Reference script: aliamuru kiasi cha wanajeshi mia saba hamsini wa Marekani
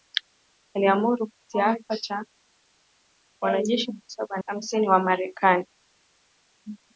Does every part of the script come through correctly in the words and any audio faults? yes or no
yes